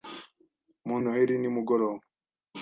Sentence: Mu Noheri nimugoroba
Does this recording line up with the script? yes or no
yes